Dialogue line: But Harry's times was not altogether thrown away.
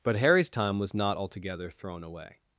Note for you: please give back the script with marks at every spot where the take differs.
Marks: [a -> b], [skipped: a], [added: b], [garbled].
But Harry's [times -> time] was not altogether thrown away.